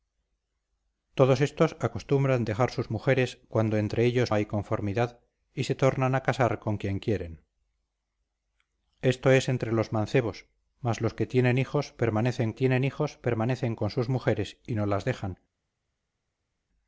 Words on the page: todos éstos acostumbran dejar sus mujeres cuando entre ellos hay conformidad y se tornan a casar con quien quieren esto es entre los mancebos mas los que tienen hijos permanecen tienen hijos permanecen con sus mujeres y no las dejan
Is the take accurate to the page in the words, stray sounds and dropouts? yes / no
yes